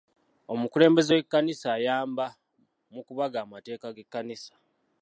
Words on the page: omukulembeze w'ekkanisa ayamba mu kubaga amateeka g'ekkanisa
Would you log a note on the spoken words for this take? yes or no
no